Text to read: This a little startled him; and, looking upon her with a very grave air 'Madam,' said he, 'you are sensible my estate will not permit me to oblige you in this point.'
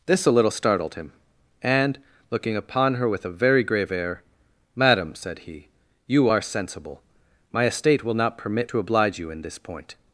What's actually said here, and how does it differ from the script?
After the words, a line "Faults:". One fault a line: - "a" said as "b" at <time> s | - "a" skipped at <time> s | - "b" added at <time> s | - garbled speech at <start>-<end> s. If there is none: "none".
This a little startled him; and, looking upon her with a very grave air 'Madam,' said he, 'you are sensible my estate will not permit to oblige you in this point.'
Faults:
- "me" skipped at 8.7 s